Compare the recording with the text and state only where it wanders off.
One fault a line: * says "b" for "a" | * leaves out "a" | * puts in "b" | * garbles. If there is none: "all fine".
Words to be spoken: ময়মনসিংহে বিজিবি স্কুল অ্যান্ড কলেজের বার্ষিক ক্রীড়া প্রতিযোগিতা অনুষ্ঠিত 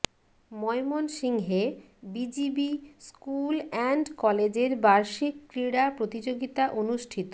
all fine